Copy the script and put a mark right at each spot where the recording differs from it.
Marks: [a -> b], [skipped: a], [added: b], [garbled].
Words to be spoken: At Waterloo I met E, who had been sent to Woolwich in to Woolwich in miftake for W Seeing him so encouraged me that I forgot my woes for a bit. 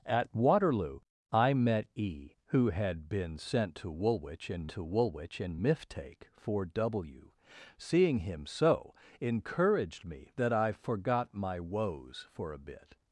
At Waterloo I met E, who had been sent to Woolwich in to Woolwich in miftake for W Seeing him so encouraged me that I forgot my woes for a bit.